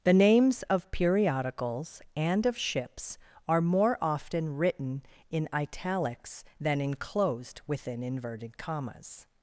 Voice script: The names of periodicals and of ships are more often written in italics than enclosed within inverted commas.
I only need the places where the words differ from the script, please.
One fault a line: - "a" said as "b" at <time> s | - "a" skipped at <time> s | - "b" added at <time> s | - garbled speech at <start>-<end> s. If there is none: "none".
none